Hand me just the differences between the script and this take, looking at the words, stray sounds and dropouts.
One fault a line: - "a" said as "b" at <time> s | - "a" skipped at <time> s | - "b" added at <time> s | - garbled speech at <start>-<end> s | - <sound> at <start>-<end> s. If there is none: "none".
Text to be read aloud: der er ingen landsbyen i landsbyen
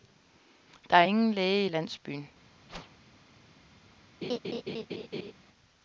- "landsbyen" said as "læge" at 1.3 s
- whoosh at 2.7-3.0 s
- laugh at 4.2-5.3 s